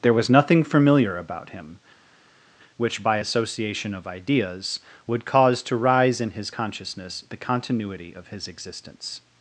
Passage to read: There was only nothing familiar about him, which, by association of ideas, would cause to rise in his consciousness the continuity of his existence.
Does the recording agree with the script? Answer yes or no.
no